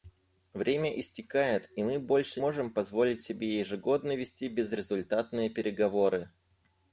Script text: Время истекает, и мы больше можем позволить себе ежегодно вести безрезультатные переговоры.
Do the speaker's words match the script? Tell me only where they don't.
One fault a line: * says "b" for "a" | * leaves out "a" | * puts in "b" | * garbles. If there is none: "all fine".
all fine